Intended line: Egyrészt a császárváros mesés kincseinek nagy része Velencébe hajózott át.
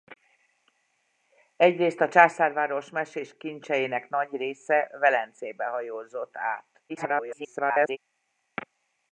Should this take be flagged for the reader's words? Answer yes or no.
yes